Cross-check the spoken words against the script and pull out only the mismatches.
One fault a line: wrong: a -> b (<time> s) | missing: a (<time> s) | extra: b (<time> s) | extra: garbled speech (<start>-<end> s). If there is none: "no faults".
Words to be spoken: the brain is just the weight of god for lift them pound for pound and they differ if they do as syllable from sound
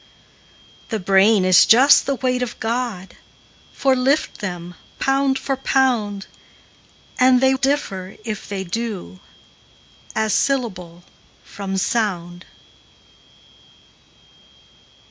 no faults